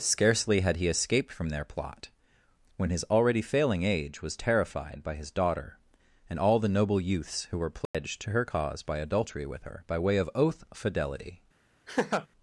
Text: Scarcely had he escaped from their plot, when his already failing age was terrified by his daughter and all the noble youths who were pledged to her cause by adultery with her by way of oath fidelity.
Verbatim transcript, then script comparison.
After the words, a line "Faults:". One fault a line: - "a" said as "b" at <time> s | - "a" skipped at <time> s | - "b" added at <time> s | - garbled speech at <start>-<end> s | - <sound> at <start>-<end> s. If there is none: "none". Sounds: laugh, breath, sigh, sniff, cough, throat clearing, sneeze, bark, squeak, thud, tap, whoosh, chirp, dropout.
Scarcely had he escaped from their plot, when his already failing age was terrified by his daughter and all the noble youths who were pledged to her cause by adultery with her by way of oath fidelity.
Faults:
- dropout at 7.9-7.9 s
- laugh at 11.9-12.3 s